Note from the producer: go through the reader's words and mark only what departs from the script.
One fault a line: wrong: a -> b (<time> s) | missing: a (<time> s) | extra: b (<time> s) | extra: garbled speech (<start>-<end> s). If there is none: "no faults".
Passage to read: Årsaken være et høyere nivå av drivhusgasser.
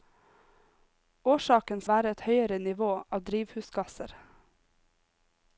no faults